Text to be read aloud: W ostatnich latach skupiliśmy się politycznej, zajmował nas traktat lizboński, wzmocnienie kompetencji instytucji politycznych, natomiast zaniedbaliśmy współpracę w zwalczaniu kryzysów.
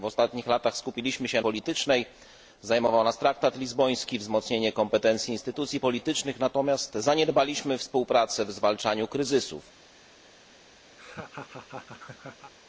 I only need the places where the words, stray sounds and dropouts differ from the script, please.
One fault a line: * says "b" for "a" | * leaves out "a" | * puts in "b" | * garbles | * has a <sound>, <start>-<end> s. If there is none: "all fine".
* has a laugh, 11.0-12.5 s